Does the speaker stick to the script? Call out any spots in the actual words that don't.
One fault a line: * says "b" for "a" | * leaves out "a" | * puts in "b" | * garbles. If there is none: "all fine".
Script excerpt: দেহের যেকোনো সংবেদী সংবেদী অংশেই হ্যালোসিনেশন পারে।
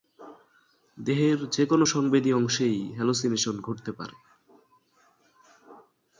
* leaves out "সংবেদী"
* puts in "ঘটতে"